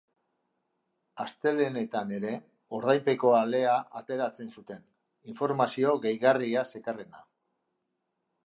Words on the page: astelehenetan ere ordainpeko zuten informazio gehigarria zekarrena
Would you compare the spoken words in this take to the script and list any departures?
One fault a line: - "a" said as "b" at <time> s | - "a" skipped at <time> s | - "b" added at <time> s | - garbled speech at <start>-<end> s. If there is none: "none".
- "alea ateratzen" added at 3.4 s